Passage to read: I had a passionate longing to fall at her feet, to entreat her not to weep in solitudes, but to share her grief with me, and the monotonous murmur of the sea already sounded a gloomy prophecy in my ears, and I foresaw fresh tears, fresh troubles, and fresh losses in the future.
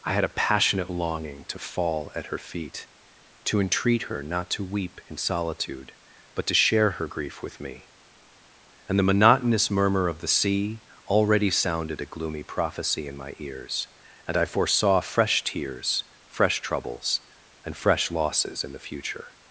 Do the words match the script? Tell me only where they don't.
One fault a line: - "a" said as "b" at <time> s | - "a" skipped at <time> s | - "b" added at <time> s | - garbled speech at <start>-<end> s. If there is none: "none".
- "solitudes" said as "solitude" at 5.2 s